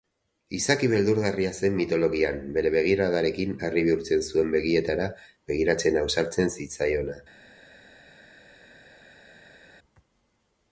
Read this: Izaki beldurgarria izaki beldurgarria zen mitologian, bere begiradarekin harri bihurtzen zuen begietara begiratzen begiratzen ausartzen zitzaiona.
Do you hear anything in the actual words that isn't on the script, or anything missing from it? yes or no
yes